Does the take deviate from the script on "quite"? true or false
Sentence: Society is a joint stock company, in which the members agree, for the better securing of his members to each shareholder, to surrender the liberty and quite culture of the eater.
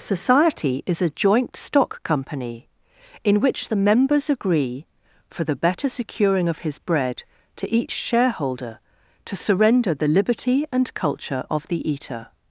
true